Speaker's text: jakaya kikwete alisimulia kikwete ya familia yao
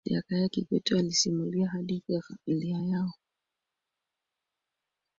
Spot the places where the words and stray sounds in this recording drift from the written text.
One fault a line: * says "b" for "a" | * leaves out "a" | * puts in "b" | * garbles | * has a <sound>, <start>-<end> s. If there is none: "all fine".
* says "hadithi" for "kikwete"